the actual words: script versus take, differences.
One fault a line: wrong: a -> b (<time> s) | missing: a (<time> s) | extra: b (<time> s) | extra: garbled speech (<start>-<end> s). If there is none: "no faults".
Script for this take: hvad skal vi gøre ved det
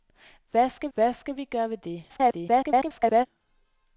extra: hvad skal (0.9 s)
extra: garbled speech (2.1-3.3 s)